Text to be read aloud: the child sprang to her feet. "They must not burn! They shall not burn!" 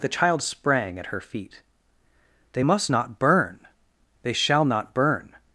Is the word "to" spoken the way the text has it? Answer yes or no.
no